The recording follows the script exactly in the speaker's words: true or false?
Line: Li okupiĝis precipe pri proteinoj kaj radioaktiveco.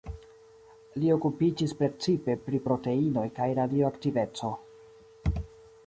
true